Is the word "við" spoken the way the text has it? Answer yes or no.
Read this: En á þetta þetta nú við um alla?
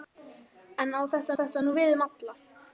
yes